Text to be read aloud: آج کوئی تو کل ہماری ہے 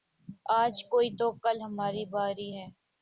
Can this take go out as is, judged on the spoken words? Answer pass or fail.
fail